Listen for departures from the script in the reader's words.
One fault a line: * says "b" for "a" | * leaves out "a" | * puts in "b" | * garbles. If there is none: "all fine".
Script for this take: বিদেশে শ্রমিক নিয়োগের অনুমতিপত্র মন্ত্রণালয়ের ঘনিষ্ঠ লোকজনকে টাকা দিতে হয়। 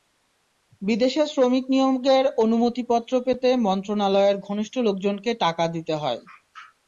* puts in "পেতে"